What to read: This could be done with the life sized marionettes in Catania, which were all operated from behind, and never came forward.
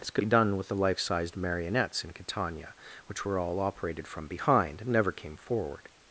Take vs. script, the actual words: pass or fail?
pass